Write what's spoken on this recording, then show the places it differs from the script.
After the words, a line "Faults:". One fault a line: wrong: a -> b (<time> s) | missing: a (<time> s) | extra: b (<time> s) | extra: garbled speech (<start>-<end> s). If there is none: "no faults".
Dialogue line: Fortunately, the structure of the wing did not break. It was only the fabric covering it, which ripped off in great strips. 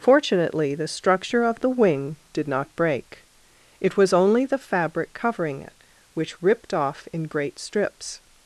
Fortunately, the structure of the wing did not break. It was only the fabric covering it, which ripped off in great strips.
Faults:
no faults